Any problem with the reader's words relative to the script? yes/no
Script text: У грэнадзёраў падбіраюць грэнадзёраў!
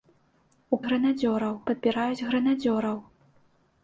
no